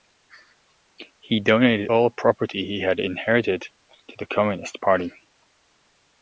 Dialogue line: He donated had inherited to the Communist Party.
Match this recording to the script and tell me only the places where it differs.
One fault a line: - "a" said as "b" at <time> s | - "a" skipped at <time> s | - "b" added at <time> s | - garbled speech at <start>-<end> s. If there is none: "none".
- "all property he" added at 1.9 s